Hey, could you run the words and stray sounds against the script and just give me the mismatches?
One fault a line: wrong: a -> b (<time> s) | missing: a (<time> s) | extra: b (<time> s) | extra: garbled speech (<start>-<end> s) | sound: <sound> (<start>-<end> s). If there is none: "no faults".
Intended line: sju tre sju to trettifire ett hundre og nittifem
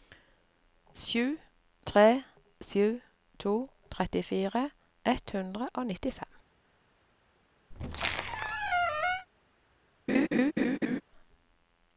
sound: squeak (7.7-9.3 s)
sound: laugh (10.1-11.0 s)